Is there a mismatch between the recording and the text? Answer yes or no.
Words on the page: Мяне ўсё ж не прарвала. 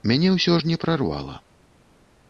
no